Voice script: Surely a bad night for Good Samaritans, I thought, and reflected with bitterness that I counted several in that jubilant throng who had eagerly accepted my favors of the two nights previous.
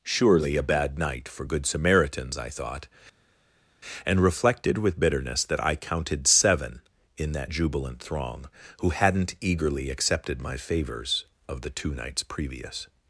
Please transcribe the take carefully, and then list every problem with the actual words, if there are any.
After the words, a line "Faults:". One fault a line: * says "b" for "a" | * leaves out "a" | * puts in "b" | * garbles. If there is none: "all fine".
Surely a bad night for Good Samaritans, I thought, and reflected with bitterness that I counted seven in that jubilant throng who hadn't eagerly accepted my favors of the two nights previous.
Faults:
* says "seven" for "several"
* says "hadn't" for "had"